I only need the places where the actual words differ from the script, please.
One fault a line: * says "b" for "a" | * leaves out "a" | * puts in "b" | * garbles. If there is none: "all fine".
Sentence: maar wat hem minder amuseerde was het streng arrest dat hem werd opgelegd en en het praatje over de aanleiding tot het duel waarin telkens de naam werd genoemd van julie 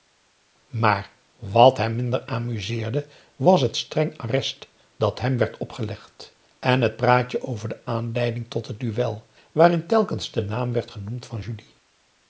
* leaves out "en"